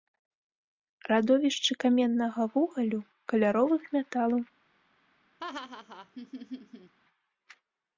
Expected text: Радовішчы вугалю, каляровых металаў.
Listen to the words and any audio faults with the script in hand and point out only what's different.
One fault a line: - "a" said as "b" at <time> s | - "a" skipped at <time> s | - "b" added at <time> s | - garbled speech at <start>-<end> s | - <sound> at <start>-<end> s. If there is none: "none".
- "каменнага" added at 1.8 s
- laugh at 5.4-6.9 s